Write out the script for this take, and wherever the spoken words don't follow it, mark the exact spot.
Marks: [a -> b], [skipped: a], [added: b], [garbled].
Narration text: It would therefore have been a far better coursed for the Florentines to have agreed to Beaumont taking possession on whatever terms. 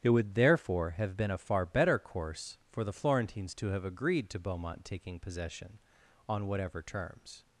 It would therefore have been a far better [coursed -> course] for the Florentines to have agreed to Beaumont taking possession on whatever terms.